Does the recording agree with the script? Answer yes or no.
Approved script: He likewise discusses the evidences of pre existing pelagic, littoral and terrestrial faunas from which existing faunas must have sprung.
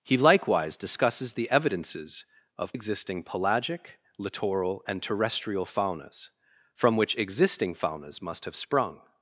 no